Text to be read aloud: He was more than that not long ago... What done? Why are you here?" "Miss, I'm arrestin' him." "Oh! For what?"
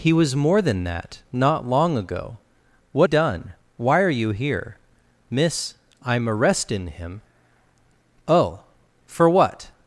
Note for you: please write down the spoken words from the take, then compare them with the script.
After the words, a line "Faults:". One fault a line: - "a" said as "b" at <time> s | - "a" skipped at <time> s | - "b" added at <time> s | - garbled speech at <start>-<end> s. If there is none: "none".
He was more than that not long ago... What done? Why are you here?" "Miss, I'm arrestin' him." "Oh! For what?"
Faults:
none